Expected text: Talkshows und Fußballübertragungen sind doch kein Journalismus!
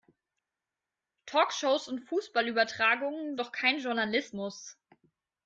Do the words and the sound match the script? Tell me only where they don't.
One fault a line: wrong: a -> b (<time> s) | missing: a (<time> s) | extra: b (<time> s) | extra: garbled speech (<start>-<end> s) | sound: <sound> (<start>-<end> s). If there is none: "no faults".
missing: sind (3.4 s)